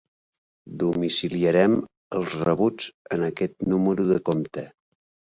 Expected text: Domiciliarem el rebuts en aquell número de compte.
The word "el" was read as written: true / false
false